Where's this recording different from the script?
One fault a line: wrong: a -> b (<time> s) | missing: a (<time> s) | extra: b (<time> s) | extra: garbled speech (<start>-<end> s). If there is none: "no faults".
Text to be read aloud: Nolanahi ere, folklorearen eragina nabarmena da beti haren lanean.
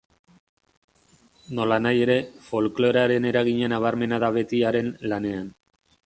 no faults